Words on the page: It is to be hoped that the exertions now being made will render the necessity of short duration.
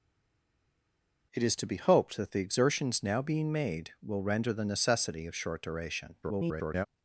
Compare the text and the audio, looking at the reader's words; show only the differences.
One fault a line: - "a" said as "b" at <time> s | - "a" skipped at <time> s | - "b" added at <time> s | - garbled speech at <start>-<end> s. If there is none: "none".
- garbled speech at 6.2-6.9 s